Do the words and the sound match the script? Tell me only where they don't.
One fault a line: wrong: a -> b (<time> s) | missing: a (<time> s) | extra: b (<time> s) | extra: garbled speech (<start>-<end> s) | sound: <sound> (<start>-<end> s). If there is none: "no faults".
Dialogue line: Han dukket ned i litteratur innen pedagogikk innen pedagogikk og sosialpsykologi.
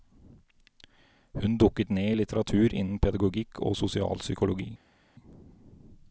wrong: Han -> Hun (1.3 s)
missing: innen pedagogikk (3.6 s)